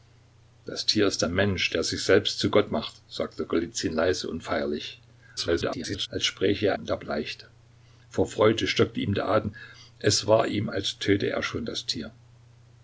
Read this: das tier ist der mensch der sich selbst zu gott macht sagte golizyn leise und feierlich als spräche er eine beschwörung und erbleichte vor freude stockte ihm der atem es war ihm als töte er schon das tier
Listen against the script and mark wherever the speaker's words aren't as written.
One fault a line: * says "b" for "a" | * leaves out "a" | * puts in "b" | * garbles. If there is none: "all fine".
* garbles
* leaves out "eine beschwörung"